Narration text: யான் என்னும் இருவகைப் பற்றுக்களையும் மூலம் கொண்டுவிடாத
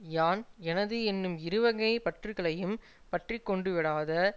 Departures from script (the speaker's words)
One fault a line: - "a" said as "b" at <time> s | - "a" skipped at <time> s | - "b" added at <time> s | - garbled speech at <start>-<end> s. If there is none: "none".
- "எனது" added at 0.6 s
- "மூலம்" said as "பற்றி" at 3.1 s